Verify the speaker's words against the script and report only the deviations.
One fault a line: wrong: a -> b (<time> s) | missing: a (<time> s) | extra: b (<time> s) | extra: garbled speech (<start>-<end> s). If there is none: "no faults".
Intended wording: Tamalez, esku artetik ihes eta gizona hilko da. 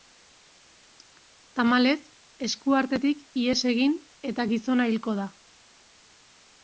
extra: egin (3.7 s)